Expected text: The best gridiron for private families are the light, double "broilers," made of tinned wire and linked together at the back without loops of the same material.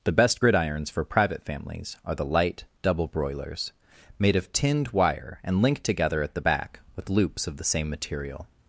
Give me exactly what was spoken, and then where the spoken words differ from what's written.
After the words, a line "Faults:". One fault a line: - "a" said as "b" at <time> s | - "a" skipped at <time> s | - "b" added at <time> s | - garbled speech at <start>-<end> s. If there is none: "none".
The best gridirons for private families are the light, double "broilers," made of tinned wire and linked together at the back with loops of the same material.
Faults:
- "gridiron" said as "gridirons" at 0.4 s
- "without" said as "with" at 7.0 s